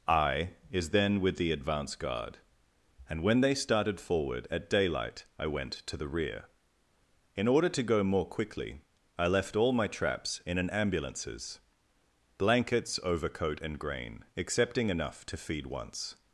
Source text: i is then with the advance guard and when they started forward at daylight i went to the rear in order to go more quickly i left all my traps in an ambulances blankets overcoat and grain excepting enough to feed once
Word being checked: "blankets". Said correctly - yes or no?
yes